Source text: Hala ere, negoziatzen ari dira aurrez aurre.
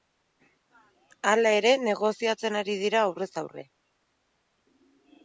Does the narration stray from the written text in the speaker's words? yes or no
no